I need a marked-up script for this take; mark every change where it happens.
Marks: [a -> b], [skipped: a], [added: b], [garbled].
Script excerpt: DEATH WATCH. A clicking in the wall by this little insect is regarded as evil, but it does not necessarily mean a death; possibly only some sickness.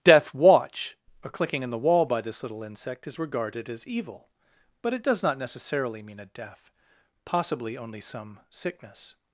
DEATH WATCH. A clicking in the wall by this little insect is regarded as evil, but it does not necessarily mean a death; possibly only some sickness.